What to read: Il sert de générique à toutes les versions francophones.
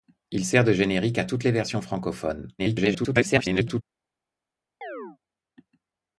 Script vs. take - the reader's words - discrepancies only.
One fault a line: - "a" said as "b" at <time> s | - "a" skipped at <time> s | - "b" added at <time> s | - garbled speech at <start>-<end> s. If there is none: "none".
- garbled speech at 2.6-3.8 s